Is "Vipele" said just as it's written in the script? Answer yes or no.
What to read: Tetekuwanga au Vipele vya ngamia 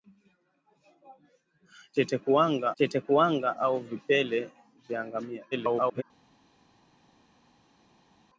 yes